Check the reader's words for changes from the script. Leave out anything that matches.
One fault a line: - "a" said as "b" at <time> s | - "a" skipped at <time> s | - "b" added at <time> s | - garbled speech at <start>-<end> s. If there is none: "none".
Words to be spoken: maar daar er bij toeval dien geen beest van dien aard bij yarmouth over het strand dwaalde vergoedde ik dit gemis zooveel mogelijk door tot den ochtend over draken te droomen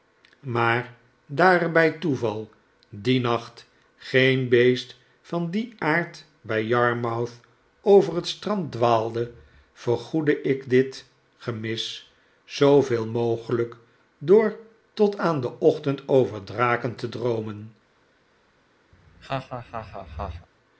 - "nacht" added at 3.2 s
- "aan" added at 15.2 s